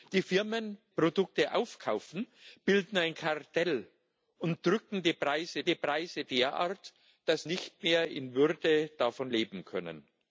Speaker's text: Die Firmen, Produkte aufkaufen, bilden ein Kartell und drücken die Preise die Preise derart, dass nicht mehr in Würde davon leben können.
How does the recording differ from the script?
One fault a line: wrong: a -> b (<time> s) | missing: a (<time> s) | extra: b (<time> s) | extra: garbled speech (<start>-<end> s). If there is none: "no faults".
no faults